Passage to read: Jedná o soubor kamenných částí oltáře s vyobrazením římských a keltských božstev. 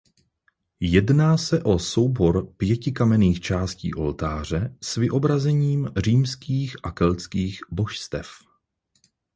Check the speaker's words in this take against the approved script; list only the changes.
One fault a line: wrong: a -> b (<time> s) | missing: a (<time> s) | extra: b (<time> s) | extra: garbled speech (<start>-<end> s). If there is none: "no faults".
extra: se (1.4 s)
extra: pěti (2.6 s)